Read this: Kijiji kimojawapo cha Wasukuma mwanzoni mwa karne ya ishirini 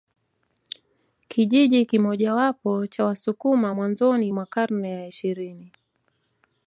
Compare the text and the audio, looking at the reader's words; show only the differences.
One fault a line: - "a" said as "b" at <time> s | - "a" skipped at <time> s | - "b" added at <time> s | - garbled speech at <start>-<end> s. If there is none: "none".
none